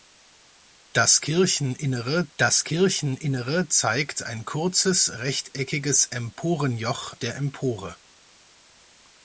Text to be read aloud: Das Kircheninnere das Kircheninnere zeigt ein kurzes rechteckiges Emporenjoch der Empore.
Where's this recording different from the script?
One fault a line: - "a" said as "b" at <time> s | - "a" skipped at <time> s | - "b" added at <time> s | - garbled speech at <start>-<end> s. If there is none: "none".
none